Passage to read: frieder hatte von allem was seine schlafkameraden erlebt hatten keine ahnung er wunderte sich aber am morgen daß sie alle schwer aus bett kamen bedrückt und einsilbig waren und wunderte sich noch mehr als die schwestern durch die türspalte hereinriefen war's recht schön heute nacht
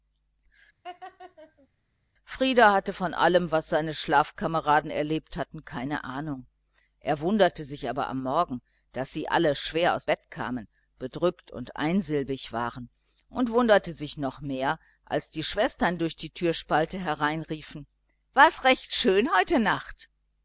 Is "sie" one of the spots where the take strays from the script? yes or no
no